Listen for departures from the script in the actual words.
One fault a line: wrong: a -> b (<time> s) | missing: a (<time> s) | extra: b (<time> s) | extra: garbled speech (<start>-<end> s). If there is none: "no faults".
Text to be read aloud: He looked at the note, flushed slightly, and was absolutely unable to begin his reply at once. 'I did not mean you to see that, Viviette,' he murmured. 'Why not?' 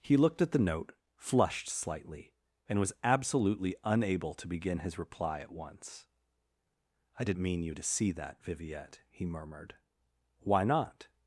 missing: not (7.4 s)